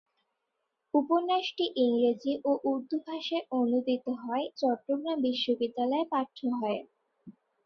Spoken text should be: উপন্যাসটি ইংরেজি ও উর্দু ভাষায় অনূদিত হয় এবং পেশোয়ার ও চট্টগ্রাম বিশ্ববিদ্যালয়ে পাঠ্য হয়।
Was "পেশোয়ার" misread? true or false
true